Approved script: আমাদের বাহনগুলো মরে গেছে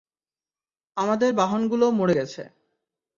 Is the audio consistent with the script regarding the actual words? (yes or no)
yes